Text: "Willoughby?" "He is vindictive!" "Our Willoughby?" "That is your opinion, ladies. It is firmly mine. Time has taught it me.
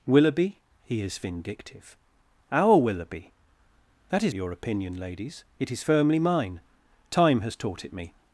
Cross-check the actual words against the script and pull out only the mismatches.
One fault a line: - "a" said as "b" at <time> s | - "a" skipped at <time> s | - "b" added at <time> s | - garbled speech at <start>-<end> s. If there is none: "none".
none